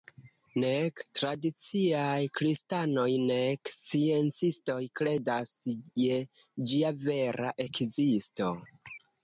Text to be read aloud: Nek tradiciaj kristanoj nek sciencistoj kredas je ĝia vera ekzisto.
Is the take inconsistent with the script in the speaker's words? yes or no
no